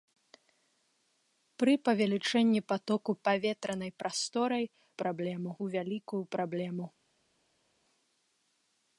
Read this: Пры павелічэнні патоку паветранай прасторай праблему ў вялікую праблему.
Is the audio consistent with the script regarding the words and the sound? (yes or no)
yes